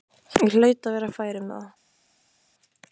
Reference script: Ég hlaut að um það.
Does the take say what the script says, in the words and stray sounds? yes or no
no